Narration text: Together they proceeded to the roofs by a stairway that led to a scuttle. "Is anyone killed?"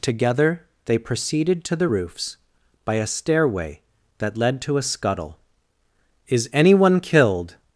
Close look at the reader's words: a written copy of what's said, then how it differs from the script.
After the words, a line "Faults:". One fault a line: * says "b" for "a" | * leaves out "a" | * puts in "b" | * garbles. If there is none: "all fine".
Together they proceeded to the roofs by a stairway that led to a scuttle. "Is anyone killed?"
Faults:
all fine